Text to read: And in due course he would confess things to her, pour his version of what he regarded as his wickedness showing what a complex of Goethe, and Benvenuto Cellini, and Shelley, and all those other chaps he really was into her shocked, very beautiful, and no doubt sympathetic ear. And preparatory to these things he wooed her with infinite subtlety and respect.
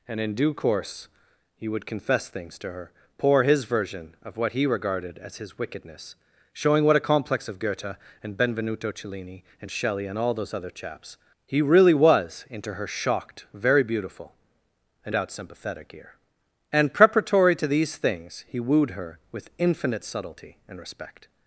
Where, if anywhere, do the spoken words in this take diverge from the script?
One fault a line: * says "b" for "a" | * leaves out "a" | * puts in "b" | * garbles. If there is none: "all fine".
* leaves out "no"